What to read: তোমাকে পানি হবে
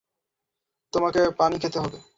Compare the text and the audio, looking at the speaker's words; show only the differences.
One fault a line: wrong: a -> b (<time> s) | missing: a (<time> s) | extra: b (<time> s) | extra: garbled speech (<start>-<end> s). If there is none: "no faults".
extra: খেতে (1.6 s)